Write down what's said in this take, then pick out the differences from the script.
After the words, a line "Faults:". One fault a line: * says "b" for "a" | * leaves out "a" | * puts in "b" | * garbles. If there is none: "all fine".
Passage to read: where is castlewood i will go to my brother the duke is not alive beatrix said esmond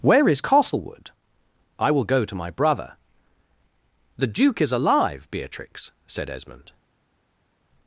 where is castlewood i will go to my brother the duke is alive beatrix said esmond
Faults:
* leaves out "not"